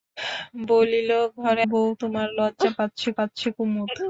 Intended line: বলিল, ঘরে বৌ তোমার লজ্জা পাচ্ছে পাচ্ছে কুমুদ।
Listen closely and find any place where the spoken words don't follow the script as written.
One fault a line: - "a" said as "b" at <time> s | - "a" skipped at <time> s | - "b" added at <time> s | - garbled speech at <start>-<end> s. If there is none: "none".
none